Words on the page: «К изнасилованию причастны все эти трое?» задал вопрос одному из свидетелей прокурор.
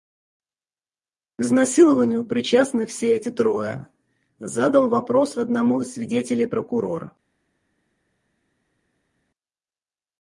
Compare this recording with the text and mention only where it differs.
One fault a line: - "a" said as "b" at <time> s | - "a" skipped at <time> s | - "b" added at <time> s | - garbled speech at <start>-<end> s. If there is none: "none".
none